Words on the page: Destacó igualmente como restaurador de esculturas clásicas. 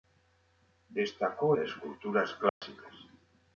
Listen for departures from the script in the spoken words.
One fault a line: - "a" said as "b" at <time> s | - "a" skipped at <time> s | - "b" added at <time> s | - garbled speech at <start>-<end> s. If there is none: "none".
- "igualmente como restaurador" skipped at 1.6 s